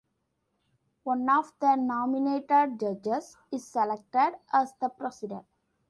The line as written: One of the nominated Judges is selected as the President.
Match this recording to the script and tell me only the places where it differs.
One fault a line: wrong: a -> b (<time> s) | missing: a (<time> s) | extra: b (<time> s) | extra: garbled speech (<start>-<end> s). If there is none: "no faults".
no faults